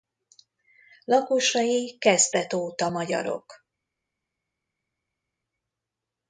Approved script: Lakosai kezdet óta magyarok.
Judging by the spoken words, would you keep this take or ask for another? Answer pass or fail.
pass